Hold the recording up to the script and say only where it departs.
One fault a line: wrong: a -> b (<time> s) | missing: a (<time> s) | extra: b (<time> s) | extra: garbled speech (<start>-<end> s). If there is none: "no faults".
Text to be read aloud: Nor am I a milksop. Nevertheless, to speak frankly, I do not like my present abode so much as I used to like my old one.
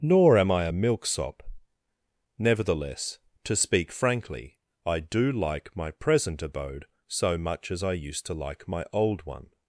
missing: not (5.3 s)